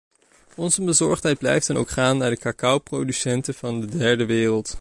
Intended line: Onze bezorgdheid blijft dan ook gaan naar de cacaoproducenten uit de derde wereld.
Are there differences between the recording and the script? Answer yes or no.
yes